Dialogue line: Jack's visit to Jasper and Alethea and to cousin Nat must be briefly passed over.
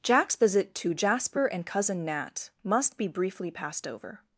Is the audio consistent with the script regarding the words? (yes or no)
no